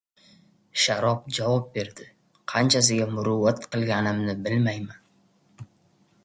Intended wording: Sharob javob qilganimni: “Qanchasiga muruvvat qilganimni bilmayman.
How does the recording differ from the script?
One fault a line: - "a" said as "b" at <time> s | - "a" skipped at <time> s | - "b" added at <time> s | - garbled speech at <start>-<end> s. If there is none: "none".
- "qilganimni" said as "berdi" at 1.8 s